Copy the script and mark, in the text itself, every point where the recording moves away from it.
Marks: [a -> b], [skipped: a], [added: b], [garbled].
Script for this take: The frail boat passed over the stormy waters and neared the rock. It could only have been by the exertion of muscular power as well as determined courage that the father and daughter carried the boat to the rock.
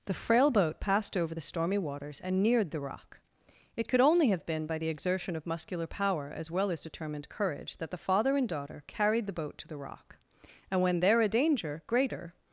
The frail boat passed over the stormy waters and neared the rock. It could only have been by the exertion of muscular power as well as determined courage that the father and daughter carried the boat to the rock. [added: And when there a danger greater]